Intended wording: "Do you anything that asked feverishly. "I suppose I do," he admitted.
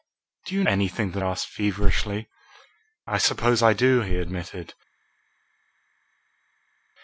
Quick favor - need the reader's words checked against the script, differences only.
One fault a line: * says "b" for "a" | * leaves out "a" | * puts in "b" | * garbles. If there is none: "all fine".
all fine